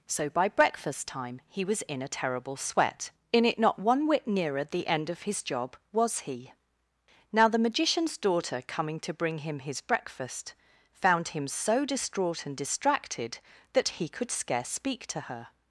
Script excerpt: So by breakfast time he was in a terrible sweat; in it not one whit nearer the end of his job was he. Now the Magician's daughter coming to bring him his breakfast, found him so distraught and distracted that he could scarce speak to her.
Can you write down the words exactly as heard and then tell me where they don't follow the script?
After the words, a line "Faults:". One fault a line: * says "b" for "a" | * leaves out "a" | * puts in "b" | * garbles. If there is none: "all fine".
So by breakfast time he was in a terrible sweat; in it not one whit nearer the end of his job was he. Now the Magician's daughter coming to bring him his breakfast, found him so distraught and distracted that he could scarce speak to her.
Faults:
all fine